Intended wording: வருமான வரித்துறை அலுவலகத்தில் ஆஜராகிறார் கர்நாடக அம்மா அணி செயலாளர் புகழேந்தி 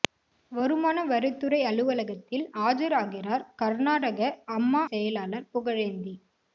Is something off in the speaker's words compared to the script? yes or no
yes